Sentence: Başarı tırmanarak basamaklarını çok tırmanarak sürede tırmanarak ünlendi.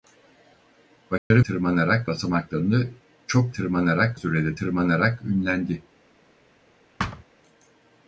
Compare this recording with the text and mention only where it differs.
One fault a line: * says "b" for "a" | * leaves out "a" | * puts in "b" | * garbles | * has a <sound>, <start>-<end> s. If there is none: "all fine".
* has a dropout, 1.2-1.3 s
* has a thud, 7.0-7.2 s